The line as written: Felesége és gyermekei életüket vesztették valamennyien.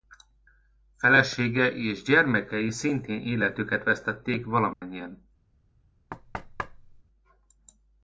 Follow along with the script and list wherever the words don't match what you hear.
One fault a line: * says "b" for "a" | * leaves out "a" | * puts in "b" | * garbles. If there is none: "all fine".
* puts in "szintén"